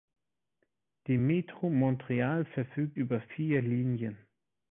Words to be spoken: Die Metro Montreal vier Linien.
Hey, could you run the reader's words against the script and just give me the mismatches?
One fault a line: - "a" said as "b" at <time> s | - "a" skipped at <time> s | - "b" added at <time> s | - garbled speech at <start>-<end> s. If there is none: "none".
- "verfügt über" added at 2.4 s